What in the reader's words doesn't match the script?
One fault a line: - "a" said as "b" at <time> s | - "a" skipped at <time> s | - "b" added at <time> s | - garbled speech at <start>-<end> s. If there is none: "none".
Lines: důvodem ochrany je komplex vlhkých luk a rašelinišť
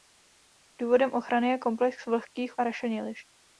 - "luk" skipped at 2.6 s